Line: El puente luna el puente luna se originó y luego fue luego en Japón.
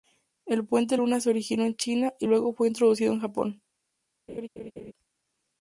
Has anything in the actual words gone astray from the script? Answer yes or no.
yes